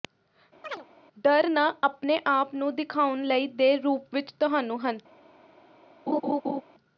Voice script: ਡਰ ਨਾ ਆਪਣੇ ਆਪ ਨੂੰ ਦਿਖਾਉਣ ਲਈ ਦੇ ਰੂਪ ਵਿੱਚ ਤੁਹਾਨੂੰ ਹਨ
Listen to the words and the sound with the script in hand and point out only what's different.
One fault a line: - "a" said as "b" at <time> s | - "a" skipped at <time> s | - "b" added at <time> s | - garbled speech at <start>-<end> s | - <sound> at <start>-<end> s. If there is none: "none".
- chirp at 0.6-0.9 s
- laugh at 6.1-6.6 s